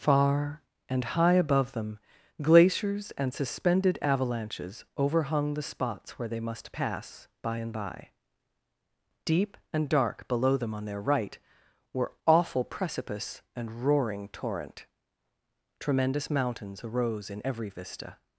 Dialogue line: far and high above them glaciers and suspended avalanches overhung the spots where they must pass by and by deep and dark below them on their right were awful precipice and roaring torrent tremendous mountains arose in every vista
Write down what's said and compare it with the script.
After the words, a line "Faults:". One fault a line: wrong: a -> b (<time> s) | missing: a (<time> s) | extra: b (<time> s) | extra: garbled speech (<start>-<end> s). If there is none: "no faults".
far and high above them glaciers and suspended avalanches overhung the spots where they must pass by and by deep and dark below them on their right were awful precipice and roaring torrent tremendous mountains arose in every vista
Faults:
no faults